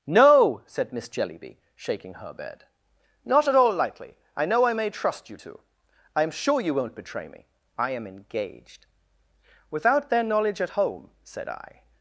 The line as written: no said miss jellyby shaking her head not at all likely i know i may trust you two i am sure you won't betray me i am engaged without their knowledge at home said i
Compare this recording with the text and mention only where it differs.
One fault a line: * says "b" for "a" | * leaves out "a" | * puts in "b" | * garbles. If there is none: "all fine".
* says "bed" for "head"